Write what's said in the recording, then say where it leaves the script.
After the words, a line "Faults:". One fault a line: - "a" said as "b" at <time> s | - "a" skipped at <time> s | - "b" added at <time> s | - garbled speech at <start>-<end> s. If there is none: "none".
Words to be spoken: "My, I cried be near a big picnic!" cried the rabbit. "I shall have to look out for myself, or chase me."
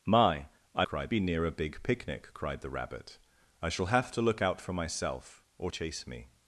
"My, I cried be near a big picnic!" cried the rabbit. "I shall have to look out for myself, or chase me."
Faults:
none